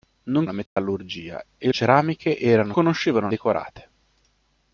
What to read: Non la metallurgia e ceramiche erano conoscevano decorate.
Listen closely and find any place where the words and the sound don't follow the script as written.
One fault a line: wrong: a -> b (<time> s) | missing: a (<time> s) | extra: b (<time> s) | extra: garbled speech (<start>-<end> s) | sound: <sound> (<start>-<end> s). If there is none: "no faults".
sound: dropout (0.7-0.8 s)